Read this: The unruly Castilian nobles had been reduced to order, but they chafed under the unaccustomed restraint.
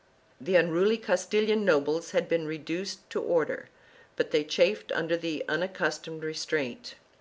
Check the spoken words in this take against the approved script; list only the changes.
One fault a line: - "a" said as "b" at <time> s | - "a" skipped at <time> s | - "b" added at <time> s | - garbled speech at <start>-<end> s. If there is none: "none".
none